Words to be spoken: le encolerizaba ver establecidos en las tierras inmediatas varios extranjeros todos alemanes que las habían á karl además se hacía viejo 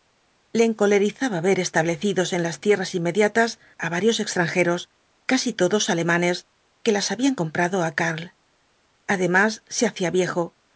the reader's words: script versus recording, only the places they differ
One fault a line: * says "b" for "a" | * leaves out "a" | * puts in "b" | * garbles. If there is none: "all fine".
* puts in "á"
* puts in "casi"
* puts in "comprado"